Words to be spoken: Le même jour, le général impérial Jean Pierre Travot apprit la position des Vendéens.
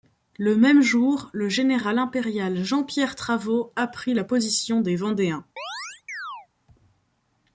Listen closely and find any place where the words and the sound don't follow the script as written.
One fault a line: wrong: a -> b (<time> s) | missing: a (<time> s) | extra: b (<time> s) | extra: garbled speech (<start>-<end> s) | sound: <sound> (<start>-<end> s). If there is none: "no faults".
sound: chirp (5.6-6.5 s)